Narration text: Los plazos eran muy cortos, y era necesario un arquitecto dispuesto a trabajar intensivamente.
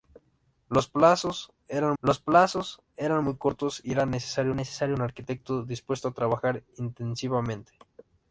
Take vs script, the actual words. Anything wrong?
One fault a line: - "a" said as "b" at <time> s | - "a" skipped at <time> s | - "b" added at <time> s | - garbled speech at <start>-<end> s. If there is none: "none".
- "los plazos eran" added at 2.0 s
- "necesario" added at 4.5 s